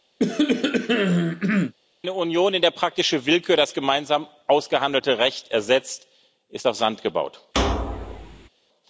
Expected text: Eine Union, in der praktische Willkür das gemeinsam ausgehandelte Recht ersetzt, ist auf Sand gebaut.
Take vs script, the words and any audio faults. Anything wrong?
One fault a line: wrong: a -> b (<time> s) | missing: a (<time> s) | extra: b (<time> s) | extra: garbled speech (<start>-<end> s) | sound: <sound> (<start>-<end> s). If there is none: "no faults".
sound: cough (0.2-1.7 s)
sound: thud (7.5-8.5 s)